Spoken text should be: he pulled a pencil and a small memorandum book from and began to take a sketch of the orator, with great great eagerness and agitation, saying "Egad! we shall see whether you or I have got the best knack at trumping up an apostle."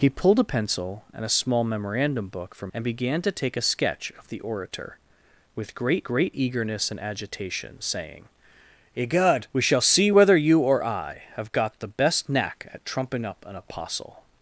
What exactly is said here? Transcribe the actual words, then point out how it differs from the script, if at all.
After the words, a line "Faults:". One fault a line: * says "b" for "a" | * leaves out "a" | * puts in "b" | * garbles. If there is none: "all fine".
he pulled a pencil and a small memorandum book from and began to take a sketch of the orator, with great great eagerness and agitation, saying "Egad! we shall see whether you or I have got the best knack at trumping up an apostle."
Faults:
all fine